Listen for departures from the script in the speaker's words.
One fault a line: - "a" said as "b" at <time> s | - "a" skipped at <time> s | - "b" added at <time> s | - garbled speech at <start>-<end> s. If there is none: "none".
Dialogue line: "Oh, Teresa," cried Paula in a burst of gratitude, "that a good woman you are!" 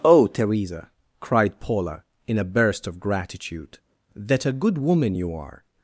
none